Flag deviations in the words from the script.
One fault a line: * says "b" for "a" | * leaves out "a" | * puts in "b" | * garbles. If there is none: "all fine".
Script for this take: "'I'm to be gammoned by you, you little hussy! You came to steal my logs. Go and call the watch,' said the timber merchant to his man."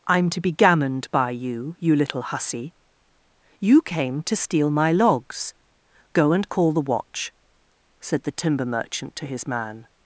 all fine